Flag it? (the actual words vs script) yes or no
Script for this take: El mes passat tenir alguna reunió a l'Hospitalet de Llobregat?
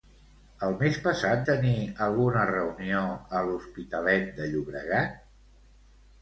no